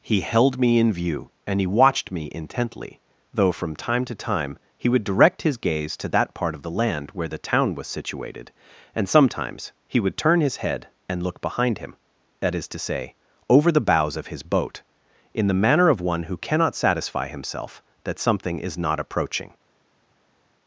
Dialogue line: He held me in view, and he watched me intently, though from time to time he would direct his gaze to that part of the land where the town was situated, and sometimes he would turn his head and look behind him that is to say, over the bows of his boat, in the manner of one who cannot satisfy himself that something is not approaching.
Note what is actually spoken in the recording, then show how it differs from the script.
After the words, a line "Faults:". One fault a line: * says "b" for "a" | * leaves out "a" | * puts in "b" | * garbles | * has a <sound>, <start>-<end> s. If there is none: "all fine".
He held me in view, and he watched me intently, though from time to time he would direct his gaze to that part of the land where the town was situated, and sometimes he would turn his head and look behind him that is to say, over the bows of his boat, in the manner of one who cannot satisfy himself that something is not approaching.
Faults:
all fine